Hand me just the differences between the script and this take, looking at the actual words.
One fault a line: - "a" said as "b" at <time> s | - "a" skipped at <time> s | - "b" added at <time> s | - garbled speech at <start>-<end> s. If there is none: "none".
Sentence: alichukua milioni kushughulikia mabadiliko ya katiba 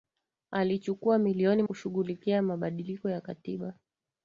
none